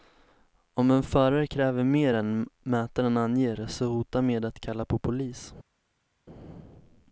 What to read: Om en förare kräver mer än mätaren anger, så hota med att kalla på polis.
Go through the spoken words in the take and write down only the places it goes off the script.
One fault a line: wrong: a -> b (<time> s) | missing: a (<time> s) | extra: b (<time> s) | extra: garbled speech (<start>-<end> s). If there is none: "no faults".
no faults